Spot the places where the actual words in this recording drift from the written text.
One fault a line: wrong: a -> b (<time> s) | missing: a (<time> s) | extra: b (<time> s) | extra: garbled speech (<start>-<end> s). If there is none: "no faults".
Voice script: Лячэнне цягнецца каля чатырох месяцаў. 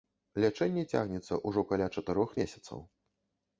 extra: ўжо (1.5 s)